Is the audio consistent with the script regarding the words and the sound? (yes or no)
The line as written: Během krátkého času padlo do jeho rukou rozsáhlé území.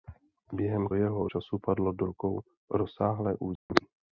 no